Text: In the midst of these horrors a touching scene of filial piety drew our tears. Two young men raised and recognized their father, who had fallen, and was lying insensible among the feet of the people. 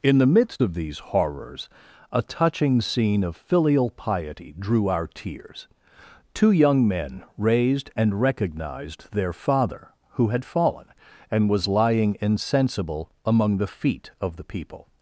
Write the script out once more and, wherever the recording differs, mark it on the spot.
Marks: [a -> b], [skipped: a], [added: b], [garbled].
In the midst of these horrors a touching scene of filial piety drew our tears. Two young men raised and recognized their father, who had fallen, and was lying insensible among the feet of the people.